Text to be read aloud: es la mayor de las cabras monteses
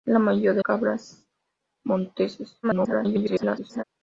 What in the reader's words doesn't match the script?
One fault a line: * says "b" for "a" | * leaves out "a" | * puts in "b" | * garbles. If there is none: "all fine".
* leaves out "las"
* garbles